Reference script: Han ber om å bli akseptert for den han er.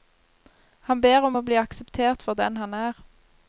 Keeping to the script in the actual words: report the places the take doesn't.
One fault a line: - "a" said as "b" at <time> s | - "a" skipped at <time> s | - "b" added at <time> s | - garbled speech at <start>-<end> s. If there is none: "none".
none